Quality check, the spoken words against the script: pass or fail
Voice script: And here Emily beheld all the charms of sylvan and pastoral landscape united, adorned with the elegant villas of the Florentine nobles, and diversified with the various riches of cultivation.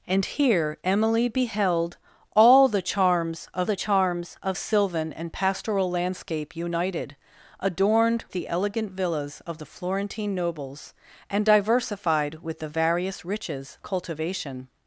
fail